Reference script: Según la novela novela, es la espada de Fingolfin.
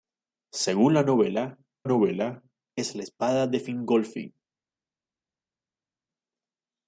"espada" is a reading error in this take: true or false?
false